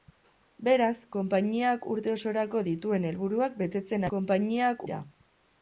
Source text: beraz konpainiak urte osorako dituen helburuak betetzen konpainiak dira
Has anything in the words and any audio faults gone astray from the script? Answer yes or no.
no